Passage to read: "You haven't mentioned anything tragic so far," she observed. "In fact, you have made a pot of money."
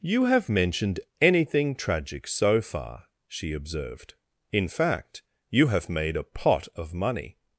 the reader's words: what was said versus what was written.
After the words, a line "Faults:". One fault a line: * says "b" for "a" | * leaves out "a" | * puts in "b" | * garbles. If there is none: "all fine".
"You have mentioned anything tragic so far," she observed. "In fact, you have made a pot of money."
Faults:
* says "have" for "haven't"